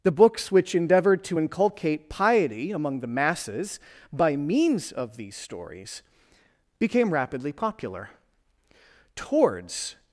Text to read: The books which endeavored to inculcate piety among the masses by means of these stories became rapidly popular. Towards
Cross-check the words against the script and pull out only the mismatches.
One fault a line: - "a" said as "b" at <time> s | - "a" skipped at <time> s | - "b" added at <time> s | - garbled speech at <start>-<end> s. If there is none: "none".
none